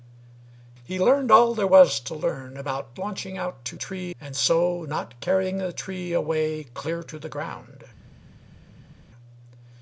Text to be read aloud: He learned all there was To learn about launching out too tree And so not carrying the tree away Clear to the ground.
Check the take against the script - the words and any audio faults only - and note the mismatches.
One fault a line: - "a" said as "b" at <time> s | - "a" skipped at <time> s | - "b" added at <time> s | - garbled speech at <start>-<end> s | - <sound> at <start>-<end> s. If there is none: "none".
none